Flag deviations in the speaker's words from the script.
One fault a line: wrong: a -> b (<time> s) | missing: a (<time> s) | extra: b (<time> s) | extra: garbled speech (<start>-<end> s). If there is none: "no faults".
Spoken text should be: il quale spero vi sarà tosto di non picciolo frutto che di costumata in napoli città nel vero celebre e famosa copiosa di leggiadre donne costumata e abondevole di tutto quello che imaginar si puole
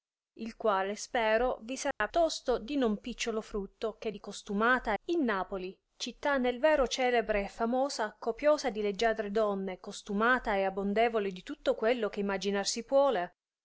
no faults